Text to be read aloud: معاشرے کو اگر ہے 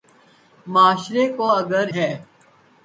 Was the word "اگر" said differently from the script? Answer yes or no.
no